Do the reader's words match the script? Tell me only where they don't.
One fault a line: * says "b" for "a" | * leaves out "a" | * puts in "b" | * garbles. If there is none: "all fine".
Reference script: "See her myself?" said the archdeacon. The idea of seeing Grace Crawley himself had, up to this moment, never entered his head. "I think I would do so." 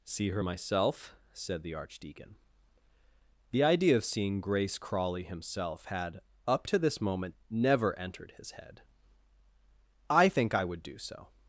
all fine